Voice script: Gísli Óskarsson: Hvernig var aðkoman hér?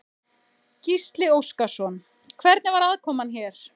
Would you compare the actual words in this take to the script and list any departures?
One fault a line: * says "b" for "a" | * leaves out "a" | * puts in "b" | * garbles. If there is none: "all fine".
all fine